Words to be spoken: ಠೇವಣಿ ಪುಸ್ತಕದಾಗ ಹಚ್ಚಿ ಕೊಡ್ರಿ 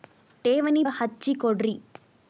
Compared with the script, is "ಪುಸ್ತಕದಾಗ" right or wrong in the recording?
wrong